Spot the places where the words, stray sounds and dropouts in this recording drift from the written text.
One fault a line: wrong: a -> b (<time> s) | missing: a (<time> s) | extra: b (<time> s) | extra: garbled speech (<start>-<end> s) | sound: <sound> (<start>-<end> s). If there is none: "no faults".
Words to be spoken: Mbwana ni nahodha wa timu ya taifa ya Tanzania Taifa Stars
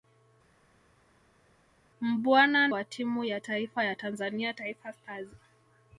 missing: ni nahodha (2.7 s)